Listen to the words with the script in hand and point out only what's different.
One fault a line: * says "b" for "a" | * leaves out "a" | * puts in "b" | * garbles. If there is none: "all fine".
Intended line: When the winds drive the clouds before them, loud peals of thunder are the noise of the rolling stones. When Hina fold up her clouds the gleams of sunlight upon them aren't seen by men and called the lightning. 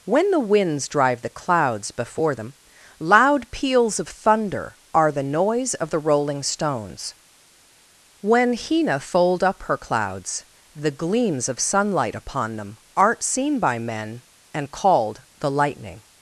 all fine